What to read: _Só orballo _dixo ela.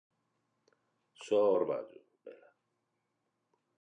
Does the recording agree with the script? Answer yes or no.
no